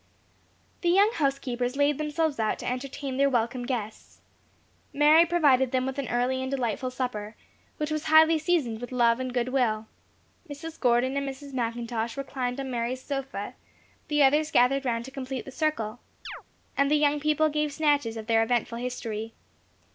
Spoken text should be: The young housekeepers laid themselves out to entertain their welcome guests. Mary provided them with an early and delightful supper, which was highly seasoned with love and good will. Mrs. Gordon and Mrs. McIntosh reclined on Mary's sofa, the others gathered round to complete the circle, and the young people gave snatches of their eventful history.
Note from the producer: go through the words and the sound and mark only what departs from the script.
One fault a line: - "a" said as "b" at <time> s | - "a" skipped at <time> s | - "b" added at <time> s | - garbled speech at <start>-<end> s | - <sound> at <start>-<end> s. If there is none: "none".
- chirp at 16.2-16.4 s